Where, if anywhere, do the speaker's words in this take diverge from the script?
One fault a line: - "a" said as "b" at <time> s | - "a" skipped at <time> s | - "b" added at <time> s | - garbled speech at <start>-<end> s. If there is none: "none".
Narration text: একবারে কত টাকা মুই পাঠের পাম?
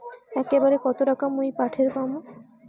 none